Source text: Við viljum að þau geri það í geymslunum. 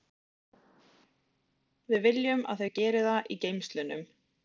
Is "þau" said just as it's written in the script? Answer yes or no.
yes